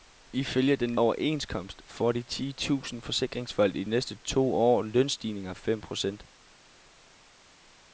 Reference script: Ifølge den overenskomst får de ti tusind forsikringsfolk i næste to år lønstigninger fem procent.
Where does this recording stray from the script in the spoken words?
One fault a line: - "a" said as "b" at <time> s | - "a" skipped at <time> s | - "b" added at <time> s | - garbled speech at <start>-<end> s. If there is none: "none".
none